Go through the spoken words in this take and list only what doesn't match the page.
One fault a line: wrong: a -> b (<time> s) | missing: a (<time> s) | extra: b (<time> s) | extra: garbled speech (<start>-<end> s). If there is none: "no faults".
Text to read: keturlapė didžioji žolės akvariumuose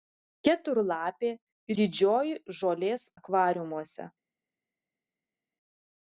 no faults